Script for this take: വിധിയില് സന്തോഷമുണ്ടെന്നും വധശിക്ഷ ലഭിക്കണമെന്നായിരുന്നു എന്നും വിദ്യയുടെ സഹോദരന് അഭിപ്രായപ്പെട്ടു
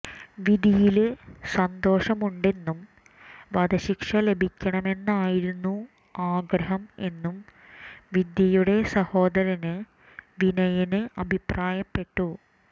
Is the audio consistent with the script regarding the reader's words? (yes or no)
no